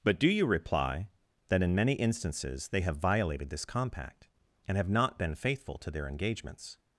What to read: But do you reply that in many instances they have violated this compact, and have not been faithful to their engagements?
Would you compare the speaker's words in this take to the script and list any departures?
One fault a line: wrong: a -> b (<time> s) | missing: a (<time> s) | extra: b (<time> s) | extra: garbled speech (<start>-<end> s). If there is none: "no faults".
no faults